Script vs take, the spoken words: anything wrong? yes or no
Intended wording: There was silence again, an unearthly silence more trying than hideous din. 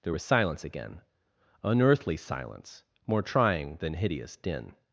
yes